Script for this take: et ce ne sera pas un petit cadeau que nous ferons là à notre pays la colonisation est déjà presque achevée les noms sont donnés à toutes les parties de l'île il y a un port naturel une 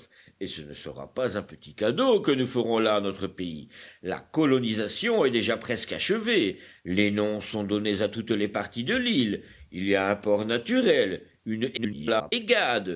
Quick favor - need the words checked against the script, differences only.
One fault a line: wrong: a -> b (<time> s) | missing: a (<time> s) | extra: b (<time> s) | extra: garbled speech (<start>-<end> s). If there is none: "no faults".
extra: garbled speech (11.8-12.3 s)